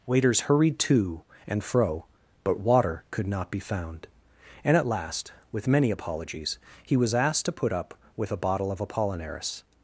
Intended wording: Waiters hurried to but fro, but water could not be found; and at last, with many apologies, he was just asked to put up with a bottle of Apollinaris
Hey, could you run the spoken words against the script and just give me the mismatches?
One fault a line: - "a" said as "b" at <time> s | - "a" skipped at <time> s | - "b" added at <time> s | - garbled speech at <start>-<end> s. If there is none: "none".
- "but" said as "and" at 1.5 s
- "just" skipped at 7.1 s